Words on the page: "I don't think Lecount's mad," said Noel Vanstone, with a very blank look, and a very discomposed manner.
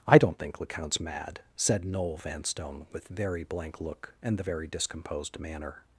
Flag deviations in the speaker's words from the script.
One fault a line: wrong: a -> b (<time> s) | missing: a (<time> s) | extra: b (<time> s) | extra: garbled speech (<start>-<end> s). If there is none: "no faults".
missing: a (3.1 s)
wrong: a -> the (4.4 s)